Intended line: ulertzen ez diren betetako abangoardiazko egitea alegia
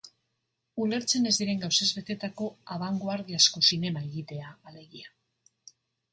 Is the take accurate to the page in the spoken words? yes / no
no